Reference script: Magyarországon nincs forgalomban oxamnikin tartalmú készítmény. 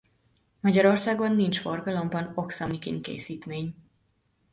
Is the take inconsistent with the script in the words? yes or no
yes